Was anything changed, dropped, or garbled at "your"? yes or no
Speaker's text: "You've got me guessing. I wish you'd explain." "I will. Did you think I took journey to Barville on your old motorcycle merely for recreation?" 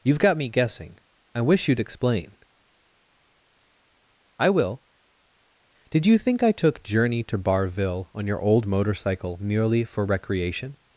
no